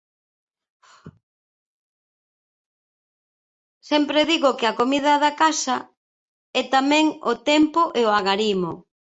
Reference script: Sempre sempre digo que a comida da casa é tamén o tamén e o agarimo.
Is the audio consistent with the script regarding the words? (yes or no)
no